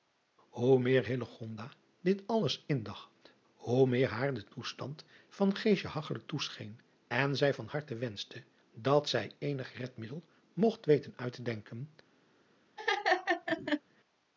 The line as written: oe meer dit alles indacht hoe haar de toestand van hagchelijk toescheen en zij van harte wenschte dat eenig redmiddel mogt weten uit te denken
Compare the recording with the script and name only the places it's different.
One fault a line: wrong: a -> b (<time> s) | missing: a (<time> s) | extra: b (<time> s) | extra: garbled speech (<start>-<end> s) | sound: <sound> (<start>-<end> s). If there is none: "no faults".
extra: meer (3.9 s)
extra: zij (9.1 s)
sound: laugh (12.8-13.8 s)